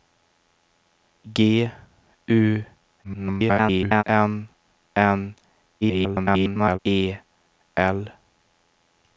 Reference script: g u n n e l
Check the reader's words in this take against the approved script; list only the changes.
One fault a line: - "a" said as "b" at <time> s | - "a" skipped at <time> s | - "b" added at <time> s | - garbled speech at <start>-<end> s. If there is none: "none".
- garbled speech at 3.0-4.0 s
- garbled speech at 5.8-6.8 s